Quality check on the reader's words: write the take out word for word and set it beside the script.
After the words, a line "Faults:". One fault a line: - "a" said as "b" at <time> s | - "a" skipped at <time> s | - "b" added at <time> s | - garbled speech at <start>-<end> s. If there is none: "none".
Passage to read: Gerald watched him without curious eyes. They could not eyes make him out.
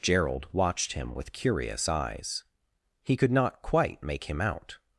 Gerald watched him with curious eyes. He could not quite make him out.
Faults:
- "without" said as "with" at 1.1 s
- "They" said as "He" at 3.0 s
- "eyes" said as "quite" at 3.6 s